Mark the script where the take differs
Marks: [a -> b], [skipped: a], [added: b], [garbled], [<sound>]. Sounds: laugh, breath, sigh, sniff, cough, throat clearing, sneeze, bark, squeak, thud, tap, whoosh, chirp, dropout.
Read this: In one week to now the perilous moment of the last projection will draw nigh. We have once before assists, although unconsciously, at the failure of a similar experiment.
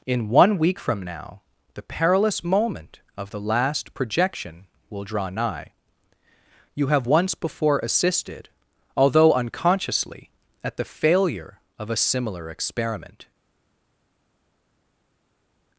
In one week [to -> from] now the perilous moment of the last projection will draw nigh. [We -> You] have once before [assists, -> assisted] although unconsciously, at the failure of a similar experiment.